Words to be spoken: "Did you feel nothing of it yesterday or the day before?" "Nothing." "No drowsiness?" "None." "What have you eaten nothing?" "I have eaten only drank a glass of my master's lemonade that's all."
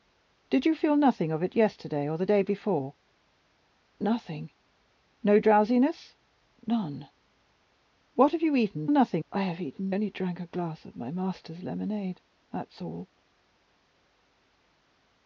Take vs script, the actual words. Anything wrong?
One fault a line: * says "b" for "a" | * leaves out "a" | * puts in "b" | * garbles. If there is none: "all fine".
all fine